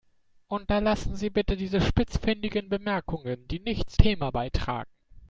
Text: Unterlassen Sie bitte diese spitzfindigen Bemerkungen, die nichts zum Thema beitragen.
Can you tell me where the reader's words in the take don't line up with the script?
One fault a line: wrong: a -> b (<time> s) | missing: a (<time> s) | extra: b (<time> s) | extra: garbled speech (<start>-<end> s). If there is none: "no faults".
missing: zum (4.0 s)